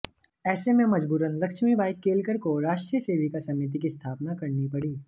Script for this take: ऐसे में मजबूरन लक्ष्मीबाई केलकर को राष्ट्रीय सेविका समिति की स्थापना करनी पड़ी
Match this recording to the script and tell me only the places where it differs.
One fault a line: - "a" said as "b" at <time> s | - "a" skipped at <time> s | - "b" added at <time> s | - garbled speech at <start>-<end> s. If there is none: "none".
none